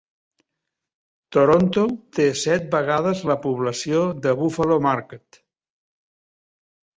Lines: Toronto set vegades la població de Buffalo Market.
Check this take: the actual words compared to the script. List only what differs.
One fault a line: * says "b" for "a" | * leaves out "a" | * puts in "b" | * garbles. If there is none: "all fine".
* puts in "té"